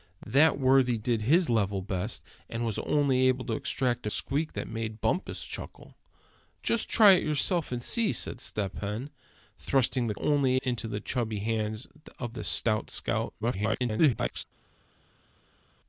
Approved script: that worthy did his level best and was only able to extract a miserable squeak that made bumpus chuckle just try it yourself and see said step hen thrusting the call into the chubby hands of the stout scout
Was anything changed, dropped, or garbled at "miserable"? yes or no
yes